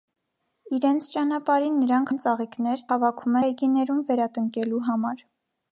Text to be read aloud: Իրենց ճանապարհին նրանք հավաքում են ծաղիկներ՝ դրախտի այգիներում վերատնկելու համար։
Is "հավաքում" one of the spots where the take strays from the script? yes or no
yes